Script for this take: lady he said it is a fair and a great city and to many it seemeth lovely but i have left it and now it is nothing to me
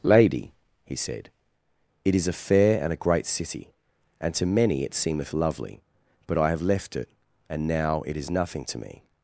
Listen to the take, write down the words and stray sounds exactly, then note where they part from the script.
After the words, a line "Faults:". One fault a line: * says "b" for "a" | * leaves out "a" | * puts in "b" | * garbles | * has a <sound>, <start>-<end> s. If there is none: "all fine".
lady he said it is a fair and a great city and to many it seemeth lovely but i have left it and now it is nothing to me
Faults:
all fine